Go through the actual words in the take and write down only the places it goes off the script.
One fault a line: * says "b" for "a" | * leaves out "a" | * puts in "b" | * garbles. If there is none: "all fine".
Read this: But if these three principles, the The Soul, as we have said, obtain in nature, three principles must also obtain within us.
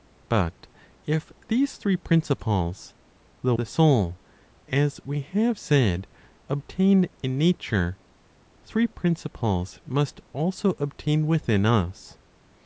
all fine